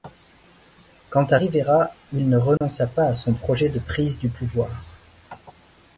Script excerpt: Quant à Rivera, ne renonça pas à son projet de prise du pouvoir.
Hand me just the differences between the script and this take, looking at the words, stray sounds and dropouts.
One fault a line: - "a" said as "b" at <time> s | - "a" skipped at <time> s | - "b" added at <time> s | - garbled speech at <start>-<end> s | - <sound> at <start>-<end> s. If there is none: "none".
- "il" added at 2.1 s
- dropout at 2.6-2.6 s